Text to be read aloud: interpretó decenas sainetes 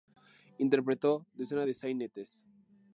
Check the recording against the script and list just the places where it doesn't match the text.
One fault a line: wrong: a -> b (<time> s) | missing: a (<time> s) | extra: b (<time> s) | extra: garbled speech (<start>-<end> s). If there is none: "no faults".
extra: de (1.6 s)